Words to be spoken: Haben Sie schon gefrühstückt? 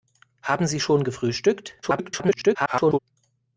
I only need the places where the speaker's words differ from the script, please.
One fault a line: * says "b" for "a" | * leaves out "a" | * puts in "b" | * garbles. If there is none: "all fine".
* garbles